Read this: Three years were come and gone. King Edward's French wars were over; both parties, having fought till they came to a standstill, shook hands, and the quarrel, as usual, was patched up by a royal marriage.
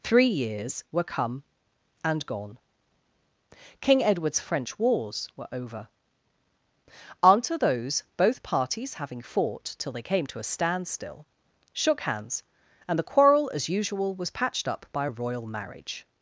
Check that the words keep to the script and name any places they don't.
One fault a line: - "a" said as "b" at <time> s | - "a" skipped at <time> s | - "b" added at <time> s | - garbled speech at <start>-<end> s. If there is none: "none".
- "unto those" added at 7.2 s